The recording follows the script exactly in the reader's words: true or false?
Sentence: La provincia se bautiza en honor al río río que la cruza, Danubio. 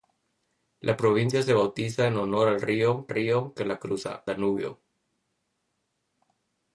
true